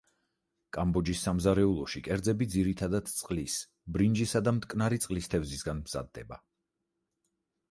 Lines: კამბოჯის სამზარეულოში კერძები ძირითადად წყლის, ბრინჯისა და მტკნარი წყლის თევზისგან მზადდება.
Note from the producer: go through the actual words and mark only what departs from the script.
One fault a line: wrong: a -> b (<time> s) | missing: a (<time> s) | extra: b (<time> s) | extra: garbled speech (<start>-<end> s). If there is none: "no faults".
no faults